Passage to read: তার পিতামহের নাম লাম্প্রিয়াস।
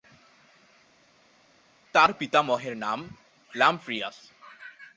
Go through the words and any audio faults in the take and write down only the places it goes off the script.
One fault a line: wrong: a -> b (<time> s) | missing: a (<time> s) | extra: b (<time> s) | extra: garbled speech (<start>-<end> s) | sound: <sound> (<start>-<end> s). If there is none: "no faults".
no faults